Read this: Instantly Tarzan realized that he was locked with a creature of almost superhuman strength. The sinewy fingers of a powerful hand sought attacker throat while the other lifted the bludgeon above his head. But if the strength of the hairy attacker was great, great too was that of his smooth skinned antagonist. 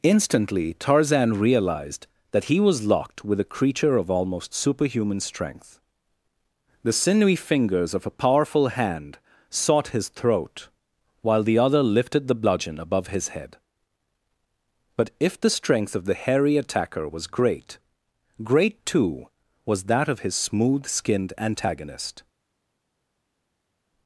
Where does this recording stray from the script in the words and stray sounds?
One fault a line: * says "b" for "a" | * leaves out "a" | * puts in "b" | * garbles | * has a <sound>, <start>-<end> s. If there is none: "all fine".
* says "his" for "attacker"